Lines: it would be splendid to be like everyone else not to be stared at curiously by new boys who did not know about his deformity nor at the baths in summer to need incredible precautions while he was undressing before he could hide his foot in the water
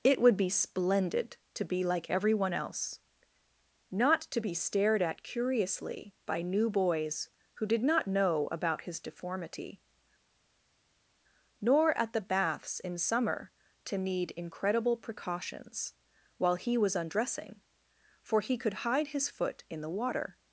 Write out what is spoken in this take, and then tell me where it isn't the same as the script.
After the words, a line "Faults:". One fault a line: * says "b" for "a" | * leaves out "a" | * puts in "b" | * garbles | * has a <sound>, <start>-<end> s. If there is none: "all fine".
it would be splendid to be like everyone else not to be stared at curiously by new boys who did not know about his deformity nor at the baths in summer to need incredible precautions while he was undressing for he could hide his foot in the water
Faults:
* says "for" for "before"